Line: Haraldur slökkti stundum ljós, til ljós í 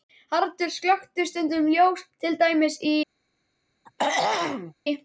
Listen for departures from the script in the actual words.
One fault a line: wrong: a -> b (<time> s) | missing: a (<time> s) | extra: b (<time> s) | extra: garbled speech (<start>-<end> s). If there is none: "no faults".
wrong: ljós -> dæmis (2.4 s)